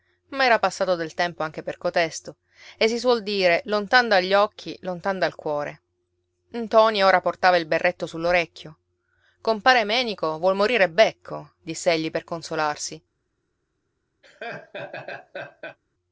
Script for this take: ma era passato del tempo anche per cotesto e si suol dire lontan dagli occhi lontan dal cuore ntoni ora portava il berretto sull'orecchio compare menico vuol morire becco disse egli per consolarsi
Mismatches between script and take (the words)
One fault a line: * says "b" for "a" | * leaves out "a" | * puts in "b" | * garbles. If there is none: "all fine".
all fine